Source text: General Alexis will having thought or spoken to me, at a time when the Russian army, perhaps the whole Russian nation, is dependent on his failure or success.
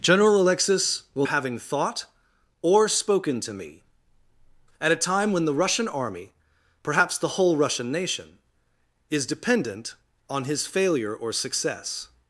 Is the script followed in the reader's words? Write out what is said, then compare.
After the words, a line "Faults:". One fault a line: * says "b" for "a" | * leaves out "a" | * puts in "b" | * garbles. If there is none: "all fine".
General Alexis will having thought or spoken to me, at a time when the Russian army, perhaps the whole Russian nation, is dependent on his failure or success.
Faults:
all fine